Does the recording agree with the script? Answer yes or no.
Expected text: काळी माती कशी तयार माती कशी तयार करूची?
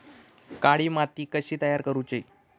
no